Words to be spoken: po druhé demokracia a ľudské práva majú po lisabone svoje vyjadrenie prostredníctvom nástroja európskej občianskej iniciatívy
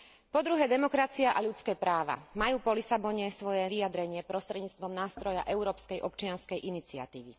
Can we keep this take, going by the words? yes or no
yes